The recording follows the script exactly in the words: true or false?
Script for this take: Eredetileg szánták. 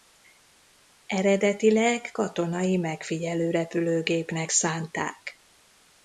false